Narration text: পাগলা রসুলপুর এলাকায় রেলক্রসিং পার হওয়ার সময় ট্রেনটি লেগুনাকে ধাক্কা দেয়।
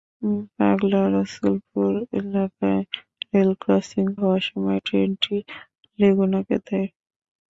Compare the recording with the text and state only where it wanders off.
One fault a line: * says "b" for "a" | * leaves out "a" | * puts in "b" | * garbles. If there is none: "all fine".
* leaves out "পার"
* leaves out "ধাক্কা"